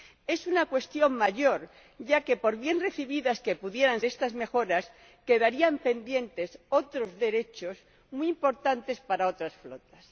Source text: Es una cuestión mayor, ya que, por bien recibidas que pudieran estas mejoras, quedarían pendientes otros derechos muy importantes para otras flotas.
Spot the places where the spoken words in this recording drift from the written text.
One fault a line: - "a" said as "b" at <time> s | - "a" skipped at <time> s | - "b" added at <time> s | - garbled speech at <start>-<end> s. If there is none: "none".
none